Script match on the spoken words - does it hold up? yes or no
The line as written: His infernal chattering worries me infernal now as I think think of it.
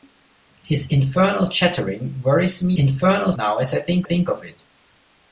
yes